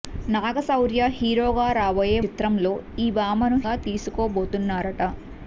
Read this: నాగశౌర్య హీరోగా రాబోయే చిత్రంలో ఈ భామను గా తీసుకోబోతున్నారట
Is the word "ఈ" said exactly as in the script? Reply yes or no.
yes